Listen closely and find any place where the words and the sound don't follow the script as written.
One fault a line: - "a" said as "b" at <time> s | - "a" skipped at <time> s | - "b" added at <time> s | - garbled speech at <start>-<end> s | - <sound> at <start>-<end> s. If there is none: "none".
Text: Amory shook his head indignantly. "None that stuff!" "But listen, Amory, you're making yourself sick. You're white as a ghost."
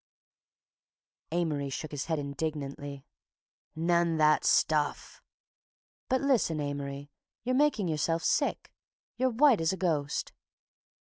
none